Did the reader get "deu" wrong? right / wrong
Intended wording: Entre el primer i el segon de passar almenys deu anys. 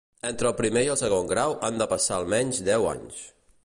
right